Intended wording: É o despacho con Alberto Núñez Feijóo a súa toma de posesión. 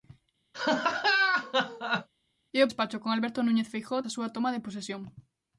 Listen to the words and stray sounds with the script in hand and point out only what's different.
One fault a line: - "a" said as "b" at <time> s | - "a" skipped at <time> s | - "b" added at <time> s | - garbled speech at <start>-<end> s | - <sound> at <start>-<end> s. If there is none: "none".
- laugh at 0.5-2.1 s